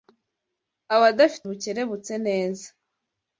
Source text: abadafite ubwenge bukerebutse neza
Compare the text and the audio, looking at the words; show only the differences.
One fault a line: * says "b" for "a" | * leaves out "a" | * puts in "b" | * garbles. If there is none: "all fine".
* leaves out "ubwenge"